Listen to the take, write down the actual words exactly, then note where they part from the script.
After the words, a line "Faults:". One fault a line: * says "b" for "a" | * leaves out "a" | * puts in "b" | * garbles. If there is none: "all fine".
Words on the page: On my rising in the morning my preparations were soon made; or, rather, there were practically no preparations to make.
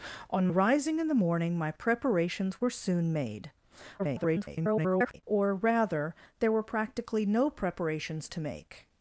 On rising in the morning my preparations were soon made; [garbled] or, rather, there were practically no preparations to make.
Faults:
* leaves out "my"
* garbles